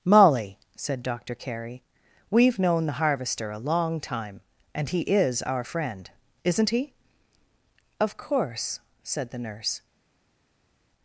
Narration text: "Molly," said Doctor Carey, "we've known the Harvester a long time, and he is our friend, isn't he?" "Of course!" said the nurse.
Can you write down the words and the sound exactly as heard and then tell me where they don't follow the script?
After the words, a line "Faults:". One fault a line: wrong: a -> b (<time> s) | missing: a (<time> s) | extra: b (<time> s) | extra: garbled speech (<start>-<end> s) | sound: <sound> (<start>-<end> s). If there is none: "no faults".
"Molly," said Doctor Carey, "we've known the Harvester a long time, and he is our friend, isn't he?" "Of course!" said the nurse.
Faults:
no faults